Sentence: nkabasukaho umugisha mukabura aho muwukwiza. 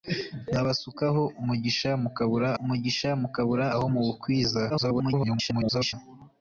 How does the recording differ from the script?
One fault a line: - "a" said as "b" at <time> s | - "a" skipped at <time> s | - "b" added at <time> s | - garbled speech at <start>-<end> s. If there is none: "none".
- "umugisha mukabura" added at 2.6 s
- garbled speech at 4.7-5.9 s